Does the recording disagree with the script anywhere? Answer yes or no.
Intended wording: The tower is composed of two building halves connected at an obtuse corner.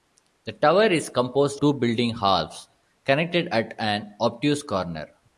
yes